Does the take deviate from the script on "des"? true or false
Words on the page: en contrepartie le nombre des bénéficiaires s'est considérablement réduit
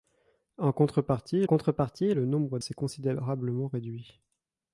true